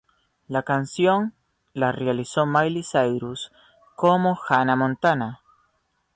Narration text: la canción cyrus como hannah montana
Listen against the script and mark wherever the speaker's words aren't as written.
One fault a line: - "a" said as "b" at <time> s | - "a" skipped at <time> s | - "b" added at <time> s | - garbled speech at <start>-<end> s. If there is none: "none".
- "la realizó miley" added at 1.7 s